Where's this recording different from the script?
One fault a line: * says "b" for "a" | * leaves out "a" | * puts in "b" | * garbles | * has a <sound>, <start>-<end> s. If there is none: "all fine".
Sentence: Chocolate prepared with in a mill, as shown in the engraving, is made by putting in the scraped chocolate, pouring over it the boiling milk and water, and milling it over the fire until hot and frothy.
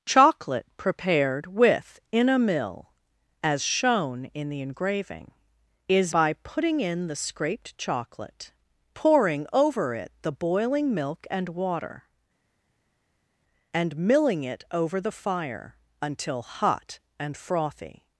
* leaves out "made"